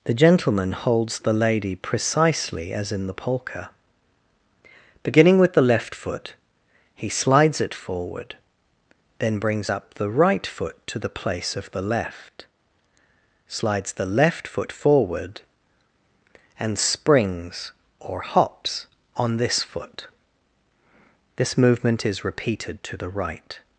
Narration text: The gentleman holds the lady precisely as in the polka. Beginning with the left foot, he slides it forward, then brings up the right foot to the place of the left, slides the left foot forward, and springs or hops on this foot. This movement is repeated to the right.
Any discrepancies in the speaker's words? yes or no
no